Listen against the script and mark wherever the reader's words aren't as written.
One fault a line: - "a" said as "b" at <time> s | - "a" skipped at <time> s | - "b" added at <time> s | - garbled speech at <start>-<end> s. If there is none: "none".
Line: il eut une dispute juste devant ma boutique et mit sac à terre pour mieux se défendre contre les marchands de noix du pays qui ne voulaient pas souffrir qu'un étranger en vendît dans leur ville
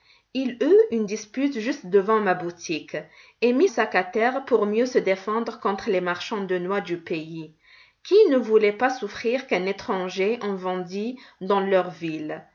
none